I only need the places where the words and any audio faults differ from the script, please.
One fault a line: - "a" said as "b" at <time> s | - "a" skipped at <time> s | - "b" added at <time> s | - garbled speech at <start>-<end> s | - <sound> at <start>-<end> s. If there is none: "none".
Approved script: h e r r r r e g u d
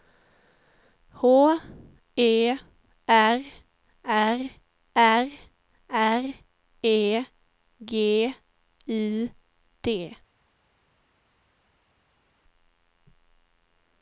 none